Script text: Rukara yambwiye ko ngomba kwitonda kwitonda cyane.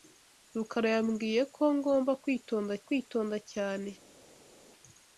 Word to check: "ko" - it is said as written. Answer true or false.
true